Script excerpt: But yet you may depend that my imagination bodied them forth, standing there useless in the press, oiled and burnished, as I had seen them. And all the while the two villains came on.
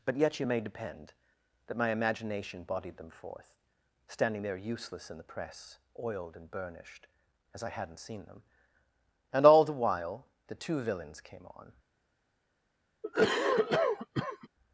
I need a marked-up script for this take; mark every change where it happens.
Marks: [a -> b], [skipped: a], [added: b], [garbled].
But yet you may depend that my imagination bodied them forth, standing there useless in the press, oiled and burnished, as I [had -> hadn't] seen them. And all the while the two villains came on.